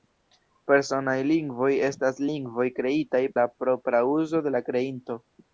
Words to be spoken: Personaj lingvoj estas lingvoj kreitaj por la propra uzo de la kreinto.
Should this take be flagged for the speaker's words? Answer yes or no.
yes